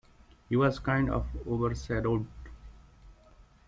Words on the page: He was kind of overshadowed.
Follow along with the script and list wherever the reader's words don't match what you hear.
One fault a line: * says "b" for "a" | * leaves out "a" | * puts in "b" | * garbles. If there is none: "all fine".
all fine